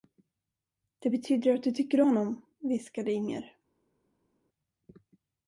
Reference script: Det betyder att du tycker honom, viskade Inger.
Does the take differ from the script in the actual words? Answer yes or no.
no